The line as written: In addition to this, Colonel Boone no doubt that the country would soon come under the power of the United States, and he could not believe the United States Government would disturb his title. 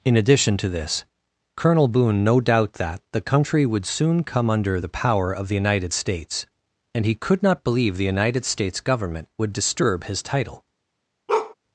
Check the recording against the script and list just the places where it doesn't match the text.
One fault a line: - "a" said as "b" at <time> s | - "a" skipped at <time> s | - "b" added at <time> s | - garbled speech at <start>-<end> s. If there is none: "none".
none